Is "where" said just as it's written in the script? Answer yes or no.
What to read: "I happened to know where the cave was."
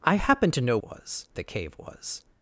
no